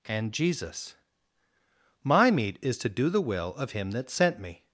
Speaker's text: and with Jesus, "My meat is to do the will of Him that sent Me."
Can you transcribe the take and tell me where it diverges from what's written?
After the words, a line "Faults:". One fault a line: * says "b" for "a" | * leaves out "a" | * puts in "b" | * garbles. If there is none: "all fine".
and Jesus, "My meat is to do the will of Him that sent Me."
Faults:
* leaves out "with"